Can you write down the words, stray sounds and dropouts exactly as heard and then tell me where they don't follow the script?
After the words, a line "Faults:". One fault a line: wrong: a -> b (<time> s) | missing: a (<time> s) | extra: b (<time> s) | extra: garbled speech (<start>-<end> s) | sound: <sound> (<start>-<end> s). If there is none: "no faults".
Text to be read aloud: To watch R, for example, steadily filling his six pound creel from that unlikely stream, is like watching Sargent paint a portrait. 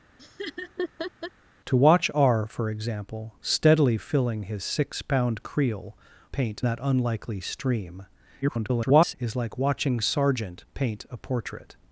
To watch R, for example, steadily filling his six pound creel paint that unlikely stream, [garbled] is like watching Sargent paint a portrait.
Faults:
sound: laugh (0.2-1.3 s)
wrong: from -> paint (6.3 s)
extra: garbled speech (8.4-9.2 s)